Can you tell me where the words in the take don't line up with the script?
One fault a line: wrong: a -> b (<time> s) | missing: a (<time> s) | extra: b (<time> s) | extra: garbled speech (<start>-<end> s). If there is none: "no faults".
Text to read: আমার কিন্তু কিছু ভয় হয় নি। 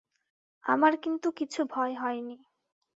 no faults